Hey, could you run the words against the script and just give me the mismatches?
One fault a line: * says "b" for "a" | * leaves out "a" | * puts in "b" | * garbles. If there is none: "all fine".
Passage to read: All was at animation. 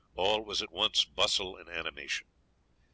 * puts in "once bustle and"